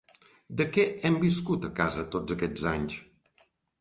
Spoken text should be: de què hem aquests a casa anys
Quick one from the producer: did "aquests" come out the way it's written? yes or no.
no